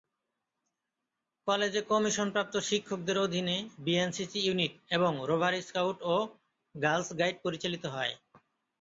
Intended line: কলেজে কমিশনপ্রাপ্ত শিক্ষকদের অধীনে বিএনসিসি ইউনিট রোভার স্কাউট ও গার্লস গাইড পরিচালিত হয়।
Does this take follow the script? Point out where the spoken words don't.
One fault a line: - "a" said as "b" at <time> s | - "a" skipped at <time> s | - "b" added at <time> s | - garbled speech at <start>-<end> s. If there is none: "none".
- "এবং" added at 5.0 s